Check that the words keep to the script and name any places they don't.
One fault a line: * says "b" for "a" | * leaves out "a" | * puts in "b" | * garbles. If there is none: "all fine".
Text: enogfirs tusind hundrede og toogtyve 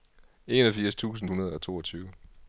all fine